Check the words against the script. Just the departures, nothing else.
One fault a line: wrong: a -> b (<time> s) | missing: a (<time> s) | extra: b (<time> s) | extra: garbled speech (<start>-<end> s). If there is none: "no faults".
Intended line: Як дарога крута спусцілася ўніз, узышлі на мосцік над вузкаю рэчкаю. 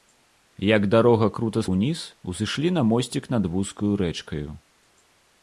missing: спусцілася (1.6 s)